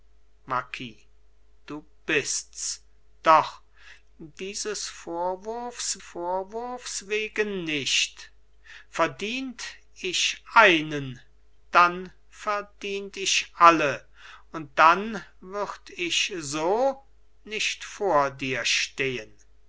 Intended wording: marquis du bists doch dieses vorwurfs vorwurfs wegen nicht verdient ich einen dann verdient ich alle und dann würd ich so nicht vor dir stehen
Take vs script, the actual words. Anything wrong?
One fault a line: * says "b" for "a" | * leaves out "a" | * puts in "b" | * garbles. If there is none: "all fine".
all fine